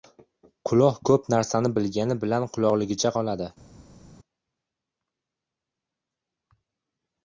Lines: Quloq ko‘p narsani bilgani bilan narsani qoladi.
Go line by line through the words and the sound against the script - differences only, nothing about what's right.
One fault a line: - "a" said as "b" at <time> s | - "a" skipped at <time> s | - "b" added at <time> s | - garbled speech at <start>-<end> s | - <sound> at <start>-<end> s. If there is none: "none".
- "narsani" said as "quloqligicha" at 2.5 s